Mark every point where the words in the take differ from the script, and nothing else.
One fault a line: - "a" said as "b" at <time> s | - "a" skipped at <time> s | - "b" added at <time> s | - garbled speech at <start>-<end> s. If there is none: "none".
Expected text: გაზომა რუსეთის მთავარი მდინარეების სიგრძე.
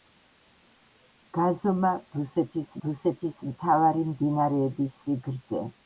- "რუსეთის" added at 2.9 s